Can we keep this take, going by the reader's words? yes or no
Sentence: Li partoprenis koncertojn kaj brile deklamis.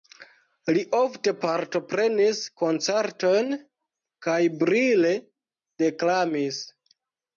no